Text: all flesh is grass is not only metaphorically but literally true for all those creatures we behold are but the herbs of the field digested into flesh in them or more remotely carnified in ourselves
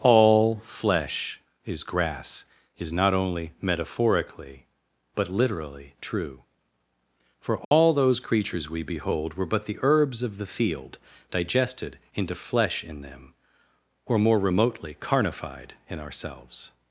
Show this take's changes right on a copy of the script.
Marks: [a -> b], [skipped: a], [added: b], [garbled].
all flesh is grass is not only metaphorically but literally true for all those creatures we behold [are -> were] but the herbs of the field digested into flesh in them or more remotely carnified in ourselves